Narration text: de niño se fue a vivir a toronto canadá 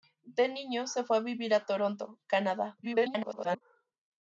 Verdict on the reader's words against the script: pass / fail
fail